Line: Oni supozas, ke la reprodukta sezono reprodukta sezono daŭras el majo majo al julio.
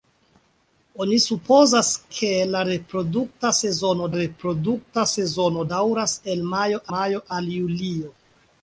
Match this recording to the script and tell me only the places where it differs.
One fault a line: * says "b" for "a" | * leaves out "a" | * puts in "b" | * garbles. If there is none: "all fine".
all fine